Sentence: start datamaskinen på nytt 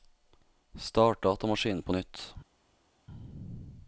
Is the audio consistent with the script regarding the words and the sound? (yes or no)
yes